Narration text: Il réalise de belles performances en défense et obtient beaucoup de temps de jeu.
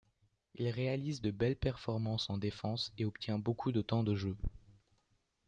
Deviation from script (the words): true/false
false